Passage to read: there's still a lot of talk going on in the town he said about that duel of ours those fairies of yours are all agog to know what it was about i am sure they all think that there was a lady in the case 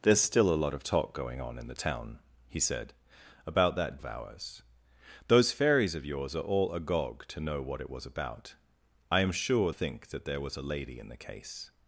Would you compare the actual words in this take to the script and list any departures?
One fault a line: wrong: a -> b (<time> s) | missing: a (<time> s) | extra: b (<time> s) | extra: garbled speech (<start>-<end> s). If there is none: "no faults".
missing: duel (4.0 s)
missing: they all (9.7 s)